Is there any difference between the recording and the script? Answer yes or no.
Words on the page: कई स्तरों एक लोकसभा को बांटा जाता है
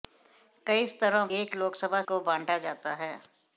no